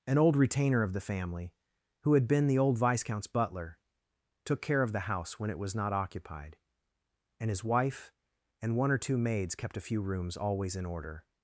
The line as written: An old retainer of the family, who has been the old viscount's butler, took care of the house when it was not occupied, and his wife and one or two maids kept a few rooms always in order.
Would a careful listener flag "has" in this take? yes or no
yes